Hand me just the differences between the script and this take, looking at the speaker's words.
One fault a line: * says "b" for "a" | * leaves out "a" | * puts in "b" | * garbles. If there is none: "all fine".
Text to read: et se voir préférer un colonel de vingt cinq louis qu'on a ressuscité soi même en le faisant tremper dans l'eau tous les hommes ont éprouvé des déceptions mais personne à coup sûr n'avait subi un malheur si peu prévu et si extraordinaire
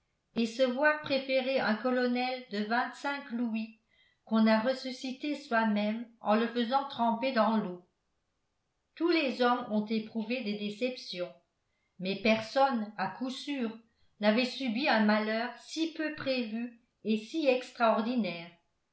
all fine